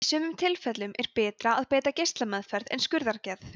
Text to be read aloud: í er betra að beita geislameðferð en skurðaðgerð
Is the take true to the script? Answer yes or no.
no